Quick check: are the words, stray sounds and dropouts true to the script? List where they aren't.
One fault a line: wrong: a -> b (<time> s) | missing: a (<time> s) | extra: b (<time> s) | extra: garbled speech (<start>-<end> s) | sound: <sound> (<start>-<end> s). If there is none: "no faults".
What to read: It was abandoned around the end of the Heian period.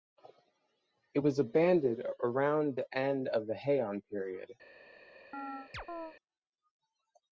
sound: chirp (5.3-6.2 s)